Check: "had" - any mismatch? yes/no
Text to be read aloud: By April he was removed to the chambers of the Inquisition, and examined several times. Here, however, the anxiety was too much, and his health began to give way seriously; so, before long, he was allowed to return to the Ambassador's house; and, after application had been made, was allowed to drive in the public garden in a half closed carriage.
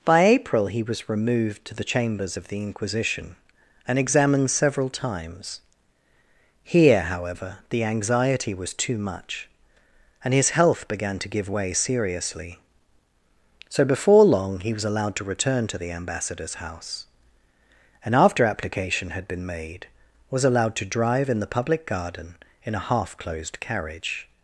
no